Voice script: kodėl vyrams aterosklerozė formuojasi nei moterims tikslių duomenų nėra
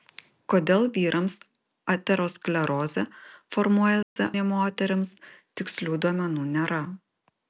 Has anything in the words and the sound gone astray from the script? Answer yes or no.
yes